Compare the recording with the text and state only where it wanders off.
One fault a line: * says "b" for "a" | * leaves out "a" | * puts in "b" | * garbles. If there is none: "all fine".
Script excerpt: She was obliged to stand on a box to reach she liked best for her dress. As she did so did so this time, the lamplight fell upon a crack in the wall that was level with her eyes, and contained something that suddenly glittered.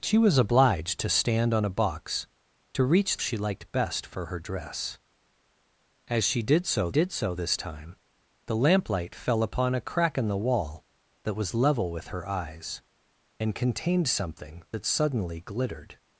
all fine